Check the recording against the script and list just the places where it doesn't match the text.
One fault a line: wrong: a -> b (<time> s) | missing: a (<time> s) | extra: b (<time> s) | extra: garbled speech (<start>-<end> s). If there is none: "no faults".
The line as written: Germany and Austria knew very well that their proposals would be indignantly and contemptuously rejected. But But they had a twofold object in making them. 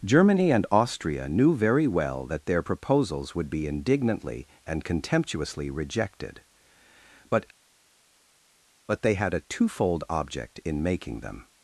no faults